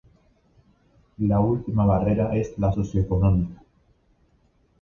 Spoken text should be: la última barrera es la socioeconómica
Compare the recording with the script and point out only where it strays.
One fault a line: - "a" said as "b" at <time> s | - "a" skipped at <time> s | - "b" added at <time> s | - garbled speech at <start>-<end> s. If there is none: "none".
none